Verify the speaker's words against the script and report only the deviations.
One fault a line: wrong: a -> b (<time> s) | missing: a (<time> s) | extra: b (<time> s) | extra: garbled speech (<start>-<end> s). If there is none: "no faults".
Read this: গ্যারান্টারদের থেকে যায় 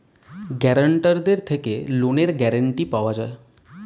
extra: লোনের গ্যারান্টি পাওয়া (1.9 s)